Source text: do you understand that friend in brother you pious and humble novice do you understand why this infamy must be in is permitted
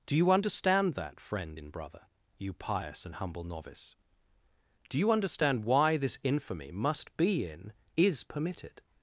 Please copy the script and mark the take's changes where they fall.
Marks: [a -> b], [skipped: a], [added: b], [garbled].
do you understand that friend in brother you pious and humble novice do you understand why this infamy must be in is permitted